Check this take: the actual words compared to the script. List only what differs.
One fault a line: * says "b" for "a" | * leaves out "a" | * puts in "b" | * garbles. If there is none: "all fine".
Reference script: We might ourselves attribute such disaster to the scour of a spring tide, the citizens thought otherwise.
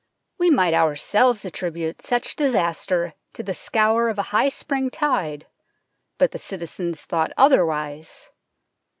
* puts in "high"
* puts in "but"